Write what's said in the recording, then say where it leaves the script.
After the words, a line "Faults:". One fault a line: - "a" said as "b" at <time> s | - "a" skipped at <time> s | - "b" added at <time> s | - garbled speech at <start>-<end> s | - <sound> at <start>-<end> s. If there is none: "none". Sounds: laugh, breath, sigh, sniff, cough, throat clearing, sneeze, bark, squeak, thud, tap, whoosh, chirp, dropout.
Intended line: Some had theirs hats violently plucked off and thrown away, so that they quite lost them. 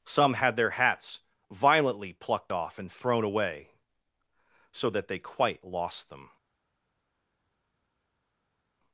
Some had their hats violently plucked off and thrown away, so that they quite lost them.
Faults:
- "theirs" said as "their" at 0.6 s